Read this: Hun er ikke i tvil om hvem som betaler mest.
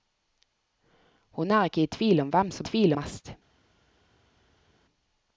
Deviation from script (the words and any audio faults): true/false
true